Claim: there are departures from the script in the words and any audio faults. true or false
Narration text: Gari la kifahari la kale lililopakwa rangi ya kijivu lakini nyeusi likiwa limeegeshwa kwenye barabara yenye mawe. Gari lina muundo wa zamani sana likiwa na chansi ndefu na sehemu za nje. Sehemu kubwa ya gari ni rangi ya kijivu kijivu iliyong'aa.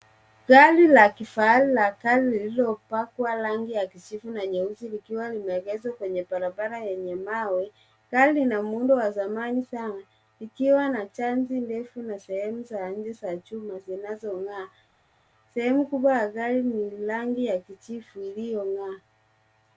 true